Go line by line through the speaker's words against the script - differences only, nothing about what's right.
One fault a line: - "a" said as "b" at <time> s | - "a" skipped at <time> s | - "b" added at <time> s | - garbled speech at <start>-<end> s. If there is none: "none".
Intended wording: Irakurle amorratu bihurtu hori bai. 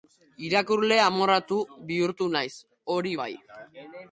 - "naiz" added at 2.4 s